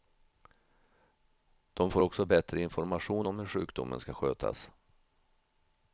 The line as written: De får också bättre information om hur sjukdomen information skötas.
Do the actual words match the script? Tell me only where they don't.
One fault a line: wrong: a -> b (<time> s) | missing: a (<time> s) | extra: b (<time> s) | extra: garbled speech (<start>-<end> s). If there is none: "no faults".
wrong: information -> ska (4.0 s)